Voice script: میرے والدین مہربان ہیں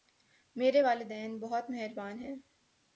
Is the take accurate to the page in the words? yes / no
no